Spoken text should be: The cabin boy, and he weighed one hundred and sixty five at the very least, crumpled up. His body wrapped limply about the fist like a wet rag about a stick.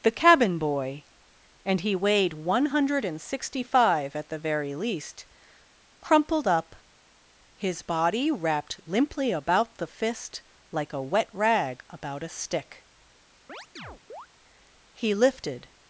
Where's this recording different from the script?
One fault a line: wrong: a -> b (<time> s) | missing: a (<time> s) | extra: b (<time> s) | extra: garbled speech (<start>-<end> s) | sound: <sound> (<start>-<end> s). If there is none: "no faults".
sound: chirp (13.5-14.3 s)
extra: He lifted (14.9 s)